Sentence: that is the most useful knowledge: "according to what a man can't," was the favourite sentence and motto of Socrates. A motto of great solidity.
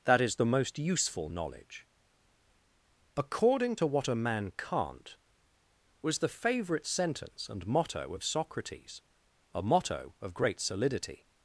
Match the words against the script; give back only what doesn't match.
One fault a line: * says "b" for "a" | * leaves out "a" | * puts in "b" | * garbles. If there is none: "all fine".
all fine